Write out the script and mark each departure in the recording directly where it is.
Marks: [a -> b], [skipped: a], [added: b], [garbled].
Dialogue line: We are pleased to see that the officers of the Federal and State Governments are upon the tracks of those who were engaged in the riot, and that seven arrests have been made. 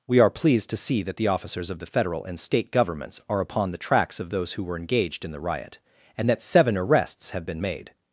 We are pleased to see that the officers of the Federal and State Governments are upon the tracks of those who were engaged in the riot, and that seven arrests have been made.